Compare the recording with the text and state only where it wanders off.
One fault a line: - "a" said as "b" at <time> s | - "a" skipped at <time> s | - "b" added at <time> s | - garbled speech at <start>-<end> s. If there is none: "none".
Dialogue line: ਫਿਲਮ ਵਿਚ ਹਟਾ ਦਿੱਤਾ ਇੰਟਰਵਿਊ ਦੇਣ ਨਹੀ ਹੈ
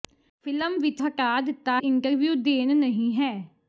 none